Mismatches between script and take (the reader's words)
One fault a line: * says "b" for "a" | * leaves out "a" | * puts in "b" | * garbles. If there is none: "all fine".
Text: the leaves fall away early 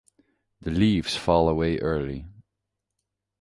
all fine